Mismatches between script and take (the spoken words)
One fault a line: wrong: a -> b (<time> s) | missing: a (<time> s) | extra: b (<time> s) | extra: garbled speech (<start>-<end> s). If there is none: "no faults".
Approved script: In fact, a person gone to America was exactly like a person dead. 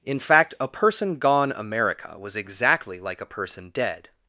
missing: to (1.5 s)